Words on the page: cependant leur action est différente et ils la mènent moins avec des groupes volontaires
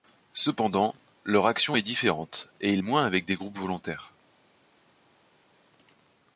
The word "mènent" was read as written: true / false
false